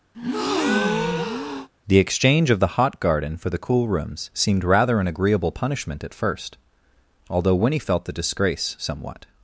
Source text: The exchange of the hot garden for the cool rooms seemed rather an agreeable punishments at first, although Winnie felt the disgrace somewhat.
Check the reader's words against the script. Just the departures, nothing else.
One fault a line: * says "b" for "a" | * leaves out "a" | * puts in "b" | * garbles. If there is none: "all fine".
* says "punishment" for "punishments"